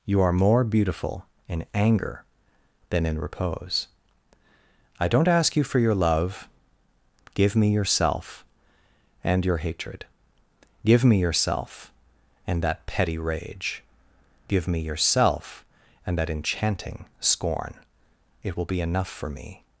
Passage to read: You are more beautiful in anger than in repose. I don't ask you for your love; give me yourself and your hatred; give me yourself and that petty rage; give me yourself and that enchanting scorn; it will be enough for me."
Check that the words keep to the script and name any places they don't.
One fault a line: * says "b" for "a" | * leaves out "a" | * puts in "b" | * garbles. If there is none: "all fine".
all fine